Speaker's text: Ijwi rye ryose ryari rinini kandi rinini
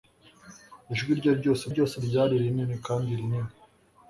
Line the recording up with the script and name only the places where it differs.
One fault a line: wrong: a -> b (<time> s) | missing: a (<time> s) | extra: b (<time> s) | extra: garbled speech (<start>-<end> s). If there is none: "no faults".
extra: ryose (1.7 s)